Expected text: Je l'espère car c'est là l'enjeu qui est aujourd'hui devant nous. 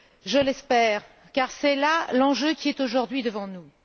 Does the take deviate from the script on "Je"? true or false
false